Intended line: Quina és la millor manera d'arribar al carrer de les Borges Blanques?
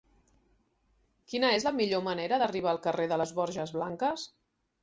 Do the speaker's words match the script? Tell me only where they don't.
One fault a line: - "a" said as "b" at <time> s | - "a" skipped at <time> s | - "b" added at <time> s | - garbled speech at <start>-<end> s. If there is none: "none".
none